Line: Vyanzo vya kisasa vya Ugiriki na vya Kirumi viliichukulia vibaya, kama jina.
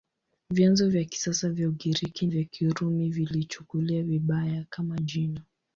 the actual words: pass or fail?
fail